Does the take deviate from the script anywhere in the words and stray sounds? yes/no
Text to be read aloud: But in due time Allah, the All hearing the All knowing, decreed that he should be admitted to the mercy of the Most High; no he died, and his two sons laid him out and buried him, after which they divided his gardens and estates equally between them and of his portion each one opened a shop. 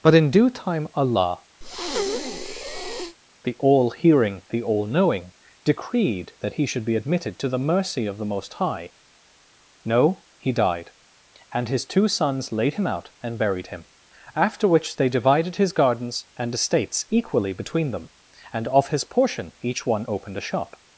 yes